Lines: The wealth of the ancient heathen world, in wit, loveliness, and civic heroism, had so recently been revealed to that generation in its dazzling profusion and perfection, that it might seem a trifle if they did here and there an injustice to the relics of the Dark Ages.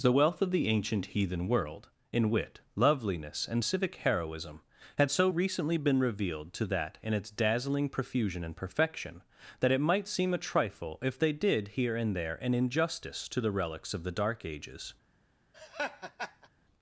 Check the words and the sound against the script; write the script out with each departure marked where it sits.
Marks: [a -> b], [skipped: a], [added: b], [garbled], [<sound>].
The wealth of the ancient heathen world, in wit, loveliness, and civic heroism, had so recently been revealed to that [skipped: generation] in its dazzling profusion and perfection, that it might seem a trifle if they did here and there an injustice to the relics of the Dark Ages. [laugh]